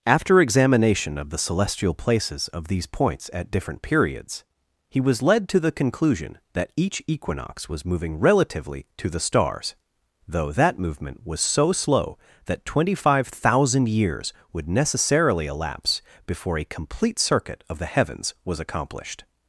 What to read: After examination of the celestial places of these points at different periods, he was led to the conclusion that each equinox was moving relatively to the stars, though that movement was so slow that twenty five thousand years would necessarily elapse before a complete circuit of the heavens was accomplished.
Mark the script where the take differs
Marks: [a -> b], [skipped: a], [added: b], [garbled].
After examination of the celestial places of these points at different periods, he was led to the conclusion that each equinox was moving relatively to the stars, though that movement was so slow that twenty five thousand years would necessarily elapse before a complete circuit of the heavens was accomplished.